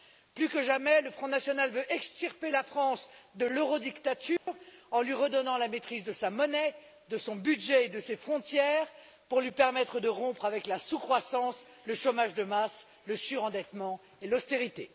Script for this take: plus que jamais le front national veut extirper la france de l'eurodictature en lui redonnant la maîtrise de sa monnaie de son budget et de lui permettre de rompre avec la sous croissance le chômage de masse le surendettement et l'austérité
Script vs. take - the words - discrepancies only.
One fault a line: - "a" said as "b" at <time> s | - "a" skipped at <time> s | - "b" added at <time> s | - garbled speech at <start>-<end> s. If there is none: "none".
- "ses frontières pour" added at 8.0 s